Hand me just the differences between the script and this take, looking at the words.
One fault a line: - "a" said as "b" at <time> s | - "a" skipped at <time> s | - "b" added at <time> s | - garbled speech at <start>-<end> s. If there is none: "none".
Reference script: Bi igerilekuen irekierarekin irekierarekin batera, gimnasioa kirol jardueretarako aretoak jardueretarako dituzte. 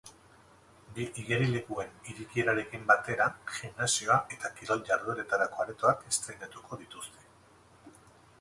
- "irekierarekin" skipped at 2.9 s
- "eta" added at 4.4 s
- "jardueretarako" said as "estreinatuko" at 6.1 s